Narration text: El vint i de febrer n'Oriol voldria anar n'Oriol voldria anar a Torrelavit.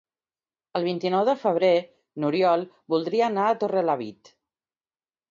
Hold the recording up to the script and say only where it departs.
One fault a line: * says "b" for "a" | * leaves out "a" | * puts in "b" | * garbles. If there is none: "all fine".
* puts in "nou"
* leaves out "n'Oriol voldria anar"